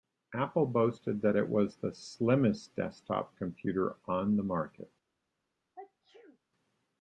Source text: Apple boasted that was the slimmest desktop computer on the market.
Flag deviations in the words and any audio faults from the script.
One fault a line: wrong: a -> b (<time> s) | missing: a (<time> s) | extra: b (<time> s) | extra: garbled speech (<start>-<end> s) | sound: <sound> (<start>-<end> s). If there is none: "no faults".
extra: it (1.4 s)
sound: sneeze (5.8-6.4 s)